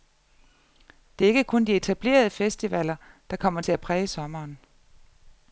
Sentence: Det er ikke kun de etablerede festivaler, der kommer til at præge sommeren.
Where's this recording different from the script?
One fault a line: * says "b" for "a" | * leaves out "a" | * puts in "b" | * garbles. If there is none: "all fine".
all fine